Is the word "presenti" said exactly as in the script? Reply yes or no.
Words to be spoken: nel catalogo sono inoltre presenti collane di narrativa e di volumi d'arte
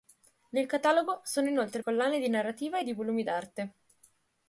no